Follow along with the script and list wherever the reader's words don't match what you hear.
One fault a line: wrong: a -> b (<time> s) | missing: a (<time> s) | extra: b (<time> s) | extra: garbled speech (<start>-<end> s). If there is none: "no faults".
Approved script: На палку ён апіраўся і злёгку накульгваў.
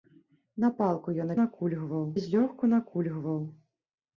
wrong: апіраўся -> накульгваў (1.4 s)